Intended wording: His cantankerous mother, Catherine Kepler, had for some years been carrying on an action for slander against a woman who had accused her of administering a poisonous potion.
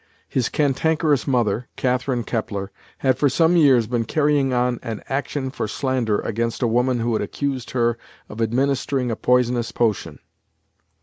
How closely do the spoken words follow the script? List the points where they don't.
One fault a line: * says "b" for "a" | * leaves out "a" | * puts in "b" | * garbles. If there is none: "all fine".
all fine